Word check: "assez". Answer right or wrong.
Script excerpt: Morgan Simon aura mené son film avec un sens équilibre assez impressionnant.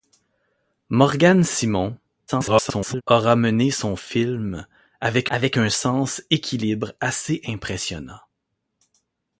right